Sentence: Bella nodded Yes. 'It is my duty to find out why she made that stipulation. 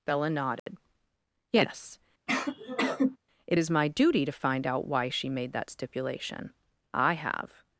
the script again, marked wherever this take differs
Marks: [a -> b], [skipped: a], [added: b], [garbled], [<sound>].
Bella nodded [dropout] Yes. [sneeze] 'It is my duty to find out why she made that stipulation. [added: I have]